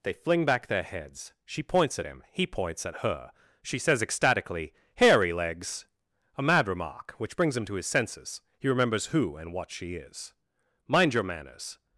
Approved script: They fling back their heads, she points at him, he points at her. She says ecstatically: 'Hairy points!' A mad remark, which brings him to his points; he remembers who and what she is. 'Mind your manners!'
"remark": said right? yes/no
yes